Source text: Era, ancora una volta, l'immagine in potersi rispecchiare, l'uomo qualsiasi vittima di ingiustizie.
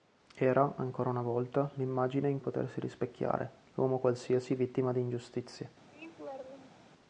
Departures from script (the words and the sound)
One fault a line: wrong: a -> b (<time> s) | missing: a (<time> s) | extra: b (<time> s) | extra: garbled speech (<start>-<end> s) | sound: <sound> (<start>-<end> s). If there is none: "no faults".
sound: laugh (5.9-6.9 s)